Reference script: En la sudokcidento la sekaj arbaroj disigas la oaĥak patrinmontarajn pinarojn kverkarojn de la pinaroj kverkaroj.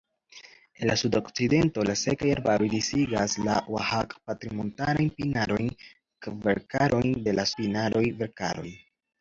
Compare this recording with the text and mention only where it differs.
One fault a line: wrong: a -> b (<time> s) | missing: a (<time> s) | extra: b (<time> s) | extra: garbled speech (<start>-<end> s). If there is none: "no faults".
no faults